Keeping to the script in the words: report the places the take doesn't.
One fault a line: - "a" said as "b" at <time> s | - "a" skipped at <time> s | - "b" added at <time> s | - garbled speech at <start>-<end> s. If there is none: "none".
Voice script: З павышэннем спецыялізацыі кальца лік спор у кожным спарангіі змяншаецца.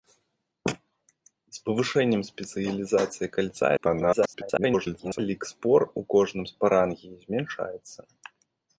- garbled speech at 3.8-5.2 s